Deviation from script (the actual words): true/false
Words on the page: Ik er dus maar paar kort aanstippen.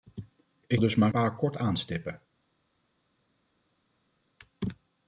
false